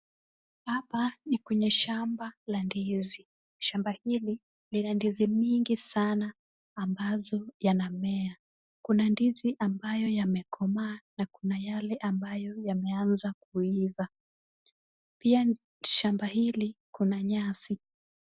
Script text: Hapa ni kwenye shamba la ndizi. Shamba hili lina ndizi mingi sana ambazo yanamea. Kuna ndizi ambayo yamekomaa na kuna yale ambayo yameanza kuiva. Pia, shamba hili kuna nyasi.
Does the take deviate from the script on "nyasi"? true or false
false